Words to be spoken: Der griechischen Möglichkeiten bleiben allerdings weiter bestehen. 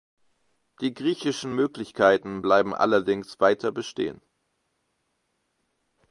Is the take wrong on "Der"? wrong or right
wrong